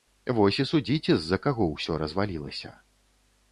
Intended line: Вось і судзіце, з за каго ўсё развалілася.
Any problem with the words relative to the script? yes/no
no